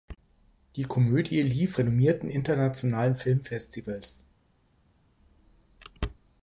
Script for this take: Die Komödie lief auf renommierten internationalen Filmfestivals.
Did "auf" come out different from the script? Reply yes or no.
yes